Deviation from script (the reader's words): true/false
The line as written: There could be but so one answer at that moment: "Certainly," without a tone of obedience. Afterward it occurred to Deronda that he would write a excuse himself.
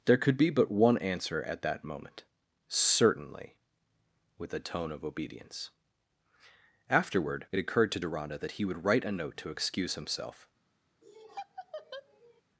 true